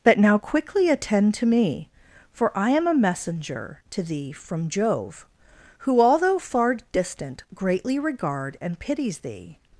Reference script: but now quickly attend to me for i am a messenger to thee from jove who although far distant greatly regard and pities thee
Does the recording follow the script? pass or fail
pass